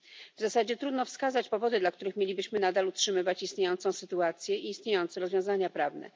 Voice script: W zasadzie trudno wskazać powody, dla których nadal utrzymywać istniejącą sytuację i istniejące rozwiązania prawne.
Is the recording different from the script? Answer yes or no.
yes